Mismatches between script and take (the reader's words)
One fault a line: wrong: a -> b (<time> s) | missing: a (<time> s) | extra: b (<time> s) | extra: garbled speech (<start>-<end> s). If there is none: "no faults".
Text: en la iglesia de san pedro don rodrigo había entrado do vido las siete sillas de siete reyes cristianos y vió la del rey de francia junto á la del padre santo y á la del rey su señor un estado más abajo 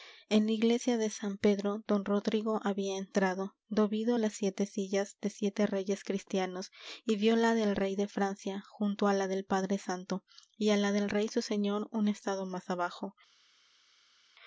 no faults